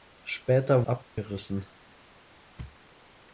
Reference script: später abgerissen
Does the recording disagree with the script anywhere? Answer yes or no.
no